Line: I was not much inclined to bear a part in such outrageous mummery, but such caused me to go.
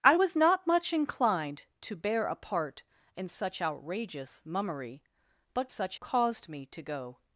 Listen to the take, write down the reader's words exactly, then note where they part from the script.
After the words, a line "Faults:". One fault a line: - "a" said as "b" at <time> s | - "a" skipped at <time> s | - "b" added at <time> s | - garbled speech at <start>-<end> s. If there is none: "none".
I was not much inclined to bear a part in such outrageous mummery, but such caused me to go.
Faults:
none